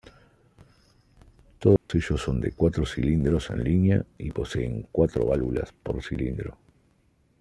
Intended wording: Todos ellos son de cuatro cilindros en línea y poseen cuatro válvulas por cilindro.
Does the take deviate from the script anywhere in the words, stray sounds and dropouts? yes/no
yes